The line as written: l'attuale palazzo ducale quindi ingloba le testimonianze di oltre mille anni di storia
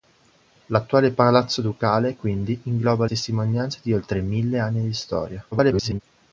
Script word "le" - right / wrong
wrong